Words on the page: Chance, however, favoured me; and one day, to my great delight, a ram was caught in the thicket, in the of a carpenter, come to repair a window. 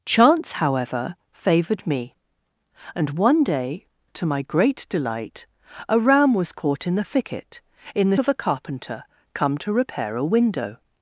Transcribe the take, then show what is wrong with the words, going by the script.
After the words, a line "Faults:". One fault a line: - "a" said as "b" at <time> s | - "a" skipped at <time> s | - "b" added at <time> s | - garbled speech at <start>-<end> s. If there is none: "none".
Chance, however, favoured me; and one day, to my great delight, a ram was caught in the thicket, in the of a carpenter, come to repair a window.
Faults:
none